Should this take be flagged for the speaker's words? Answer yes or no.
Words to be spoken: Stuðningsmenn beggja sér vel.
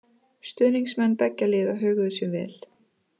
yes